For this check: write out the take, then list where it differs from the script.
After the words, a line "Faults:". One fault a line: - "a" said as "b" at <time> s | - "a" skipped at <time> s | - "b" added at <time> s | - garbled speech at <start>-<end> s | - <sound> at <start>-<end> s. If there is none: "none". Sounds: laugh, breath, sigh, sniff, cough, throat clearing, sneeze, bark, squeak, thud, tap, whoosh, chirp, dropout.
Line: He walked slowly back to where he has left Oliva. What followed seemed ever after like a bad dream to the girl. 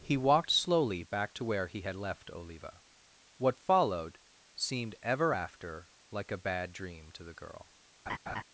He walked slowly back to where he had left Oliva. What followed seemed ever after like a bad dream to the girl.
Faults:
- "has" said as "had" at 1.8 s
- laugh at 8.1-8.4 s